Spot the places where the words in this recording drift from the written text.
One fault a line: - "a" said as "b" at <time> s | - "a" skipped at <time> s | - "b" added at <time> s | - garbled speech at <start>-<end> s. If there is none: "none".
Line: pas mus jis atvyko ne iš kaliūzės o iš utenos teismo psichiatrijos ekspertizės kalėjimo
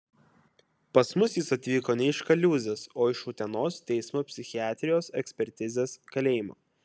none